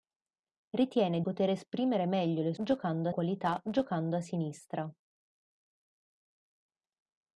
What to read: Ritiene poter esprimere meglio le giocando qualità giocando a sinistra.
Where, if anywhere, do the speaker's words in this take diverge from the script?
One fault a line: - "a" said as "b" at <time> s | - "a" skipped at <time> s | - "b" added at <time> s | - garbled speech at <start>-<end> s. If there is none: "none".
none